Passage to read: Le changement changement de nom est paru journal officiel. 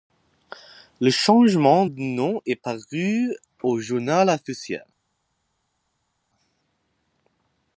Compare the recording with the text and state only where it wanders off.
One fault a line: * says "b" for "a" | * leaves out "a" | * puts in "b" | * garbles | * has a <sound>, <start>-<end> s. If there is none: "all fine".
* leaves out "changement"
* puts in "au"